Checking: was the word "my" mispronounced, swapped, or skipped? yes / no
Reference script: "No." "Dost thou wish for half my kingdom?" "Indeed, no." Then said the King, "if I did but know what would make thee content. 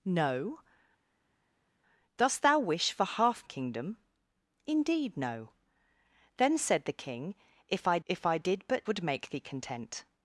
yes